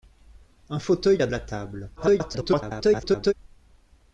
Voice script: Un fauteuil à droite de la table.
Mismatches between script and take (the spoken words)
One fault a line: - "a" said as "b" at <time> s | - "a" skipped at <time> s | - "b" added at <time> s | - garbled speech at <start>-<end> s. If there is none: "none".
- "droite de" skipped at 1.3 s
- garbled speech at 2.0-3.3 s